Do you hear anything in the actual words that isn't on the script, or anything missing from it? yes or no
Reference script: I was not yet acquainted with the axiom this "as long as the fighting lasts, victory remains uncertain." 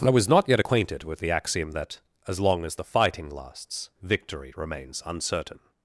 yes